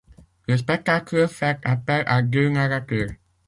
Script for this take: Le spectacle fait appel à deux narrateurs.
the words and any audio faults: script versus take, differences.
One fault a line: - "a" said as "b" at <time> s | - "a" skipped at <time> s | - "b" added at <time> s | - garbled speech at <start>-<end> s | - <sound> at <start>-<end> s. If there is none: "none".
none